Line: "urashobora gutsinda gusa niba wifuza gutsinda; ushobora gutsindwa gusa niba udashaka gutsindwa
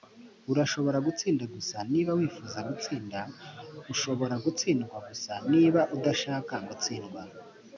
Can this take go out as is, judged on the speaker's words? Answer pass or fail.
pass